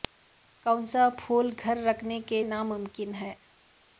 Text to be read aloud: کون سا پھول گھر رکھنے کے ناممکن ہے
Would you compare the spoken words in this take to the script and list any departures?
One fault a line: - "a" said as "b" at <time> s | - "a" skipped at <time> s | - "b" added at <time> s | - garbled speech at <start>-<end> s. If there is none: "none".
none